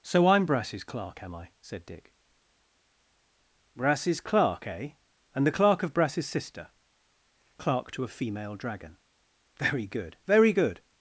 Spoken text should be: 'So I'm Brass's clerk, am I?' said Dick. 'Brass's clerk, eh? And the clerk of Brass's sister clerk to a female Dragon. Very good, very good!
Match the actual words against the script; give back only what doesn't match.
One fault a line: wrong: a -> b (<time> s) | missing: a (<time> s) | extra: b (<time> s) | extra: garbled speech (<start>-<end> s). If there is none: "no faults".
no faults